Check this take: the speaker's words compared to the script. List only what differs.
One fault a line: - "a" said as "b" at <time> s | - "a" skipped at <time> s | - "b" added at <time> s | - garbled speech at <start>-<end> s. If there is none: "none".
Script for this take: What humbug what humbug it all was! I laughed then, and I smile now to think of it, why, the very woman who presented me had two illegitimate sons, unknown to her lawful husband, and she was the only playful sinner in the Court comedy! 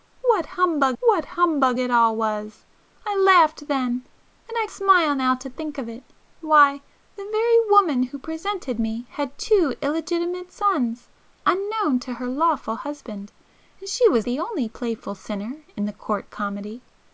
none